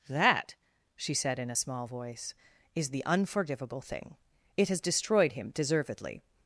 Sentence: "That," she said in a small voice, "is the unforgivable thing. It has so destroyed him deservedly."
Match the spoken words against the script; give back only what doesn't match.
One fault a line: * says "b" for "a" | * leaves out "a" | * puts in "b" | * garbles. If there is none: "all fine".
* leaves out "so"